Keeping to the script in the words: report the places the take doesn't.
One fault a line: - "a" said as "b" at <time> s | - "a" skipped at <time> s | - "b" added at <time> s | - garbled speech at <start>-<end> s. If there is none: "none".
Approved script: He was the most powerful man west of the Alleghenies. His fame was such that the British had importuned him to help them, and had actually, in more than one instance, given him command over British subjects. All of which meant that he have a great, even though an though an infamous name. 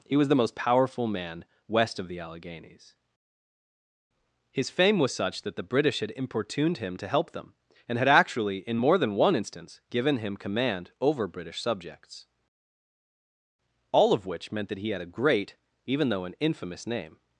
- "have" said as "had" at 14.9 s
- "though an" skipped at 16.4 s